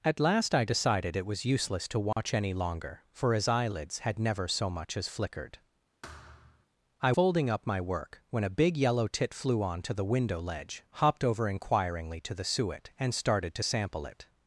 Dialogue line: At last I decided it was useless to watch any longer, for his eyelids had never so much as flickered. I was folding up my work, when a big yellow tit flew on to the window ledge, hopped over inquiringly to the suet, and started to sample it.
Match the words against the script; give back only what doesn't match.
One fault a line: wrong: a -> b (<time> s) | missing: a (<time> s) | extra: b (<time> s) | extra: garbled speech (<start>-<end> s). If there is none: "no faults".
missing: was (7.1 s)